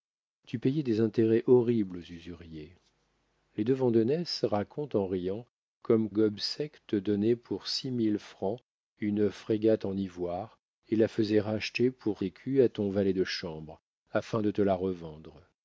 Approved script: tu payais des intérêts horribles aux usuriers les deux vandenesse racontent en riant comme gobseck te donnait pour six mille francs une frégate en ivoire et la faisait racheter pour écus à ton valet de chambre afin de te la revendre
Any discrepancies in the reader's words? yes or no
no